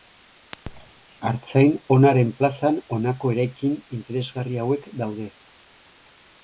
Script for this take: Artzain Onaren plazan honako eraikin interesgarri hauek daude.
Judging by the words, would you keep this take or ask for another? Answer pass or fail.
pass